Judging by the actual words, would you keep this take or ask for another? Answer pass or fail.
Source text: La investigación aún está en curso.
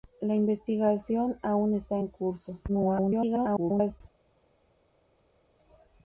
fail